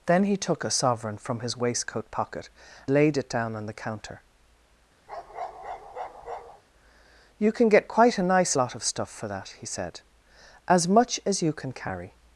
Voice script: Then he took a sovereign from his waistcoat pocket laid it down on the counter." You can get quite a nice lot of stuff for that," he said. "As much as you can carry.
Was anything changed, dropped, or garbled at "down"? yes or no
no